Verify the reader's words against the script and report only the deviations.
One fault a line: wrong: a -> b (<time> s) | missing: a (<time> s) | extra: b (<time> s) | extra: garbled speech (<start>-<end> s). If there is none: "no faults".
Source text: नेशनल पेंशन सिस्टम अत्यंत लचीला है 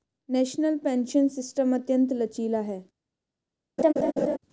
no faults